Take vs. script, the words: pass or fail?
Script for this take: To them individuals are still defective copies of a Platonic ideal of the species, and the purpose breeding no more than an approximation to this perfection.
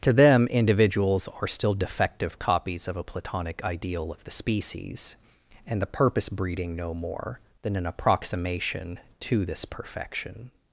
pass